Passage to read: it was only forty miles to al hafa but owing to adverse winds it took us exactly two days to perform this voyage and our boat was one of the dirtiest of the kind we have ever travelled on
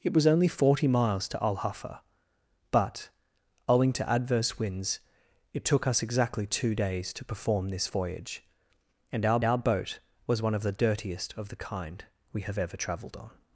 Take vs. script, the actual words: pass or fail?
fail